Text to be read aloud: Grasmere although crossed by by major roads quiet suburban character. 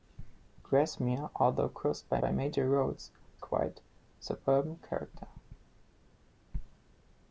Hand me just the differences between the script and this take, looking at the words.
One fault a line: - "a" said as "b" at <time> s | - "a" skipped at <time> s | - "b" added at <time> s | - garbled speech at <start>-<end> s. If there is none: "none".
none